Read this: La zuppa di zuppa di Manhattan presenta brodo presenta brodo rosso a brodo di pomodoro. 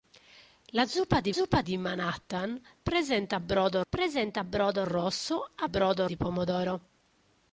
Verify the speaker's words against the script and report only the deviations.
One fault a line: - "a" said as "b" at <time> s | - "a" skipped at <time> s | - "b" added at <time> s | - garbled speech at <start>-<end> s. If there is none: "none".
none